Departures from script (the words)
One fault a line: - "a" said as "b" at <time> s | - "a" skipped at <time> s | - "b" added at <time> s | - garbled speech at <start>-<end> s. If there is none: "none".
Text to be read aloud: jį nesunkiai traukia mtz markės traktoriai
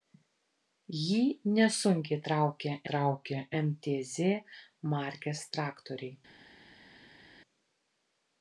- "traukia" added at 2.9 s